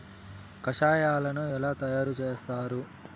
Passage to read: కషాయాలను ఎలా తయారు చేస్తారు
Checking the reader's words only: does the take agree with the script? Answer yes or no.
yes